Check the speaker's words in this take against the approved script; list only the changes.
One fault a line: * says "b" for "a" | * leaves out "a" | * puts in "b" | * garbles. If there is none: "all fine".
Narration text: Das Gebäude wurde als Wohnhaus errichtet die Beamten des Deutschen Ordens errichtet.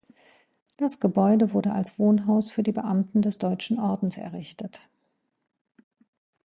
* says "für" for "errichtet"